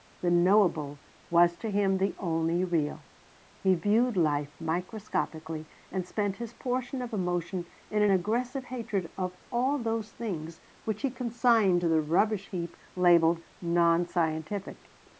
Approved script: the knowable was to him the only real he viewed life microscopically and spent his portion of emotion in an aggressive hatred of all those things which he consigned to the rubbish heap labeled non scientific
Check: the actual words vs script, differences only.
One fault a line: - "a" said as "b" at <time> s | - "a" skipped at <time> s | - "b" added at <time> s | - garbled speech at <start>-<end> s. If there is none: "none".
none